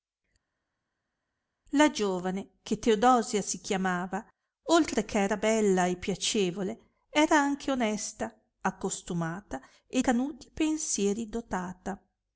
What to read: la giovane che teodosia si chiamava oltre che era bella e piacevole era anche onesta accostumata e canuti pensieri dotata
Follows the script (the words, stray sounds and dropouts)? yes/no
yes